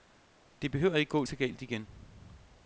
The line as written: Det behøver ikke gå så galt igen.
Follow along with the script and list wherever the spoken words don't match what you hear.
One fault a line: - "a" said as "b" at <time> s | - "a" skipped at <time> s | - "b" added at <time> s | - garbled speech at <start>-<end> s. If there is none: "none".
none